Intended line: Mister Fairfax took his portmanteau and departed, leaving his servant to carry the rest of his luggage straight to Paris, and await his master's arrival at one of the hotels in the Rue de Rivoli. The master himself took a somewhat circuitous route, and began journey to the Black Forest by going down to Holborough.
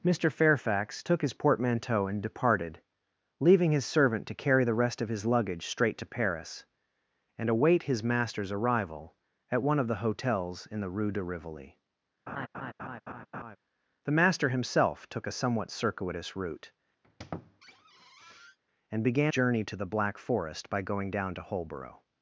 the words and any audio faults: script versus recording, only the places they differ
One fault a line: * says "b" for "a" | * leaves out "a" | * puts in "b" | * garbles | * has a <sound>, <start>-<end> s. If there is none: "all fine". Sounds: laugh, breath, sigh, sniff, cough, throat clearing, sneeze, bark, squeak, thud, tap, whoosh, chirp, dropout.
* has a laugh, 12.3-13.6 s
* has a squeak, 17.0-18.6 s